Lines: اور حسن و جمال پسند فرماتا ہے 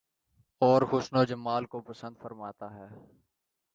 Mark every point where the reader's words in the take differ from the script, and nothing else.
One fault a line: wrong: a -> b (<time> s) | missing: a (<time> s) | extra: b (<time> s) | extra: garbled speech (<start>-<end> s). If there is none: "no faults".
extra: کو (1.6 s)